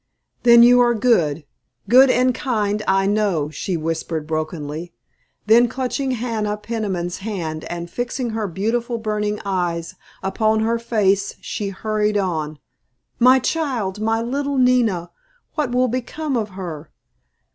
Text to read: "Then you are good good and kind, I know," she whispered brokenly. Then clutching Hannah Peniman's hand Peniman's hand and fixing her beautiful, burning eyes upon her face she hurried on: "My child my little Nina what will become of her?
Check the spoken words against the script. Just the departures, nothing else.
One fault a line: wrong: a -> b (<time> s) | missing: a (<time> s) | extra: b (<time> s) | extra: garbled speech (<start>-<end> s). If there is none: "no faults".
missing: Peniman's hand (7.7 s)